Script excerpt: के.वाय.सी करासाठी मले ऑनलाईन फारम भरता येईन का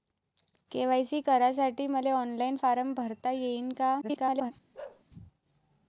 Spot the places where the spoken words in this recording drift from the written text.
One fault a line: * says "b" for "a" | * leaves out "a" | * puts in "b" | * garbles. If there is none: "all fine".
* garbles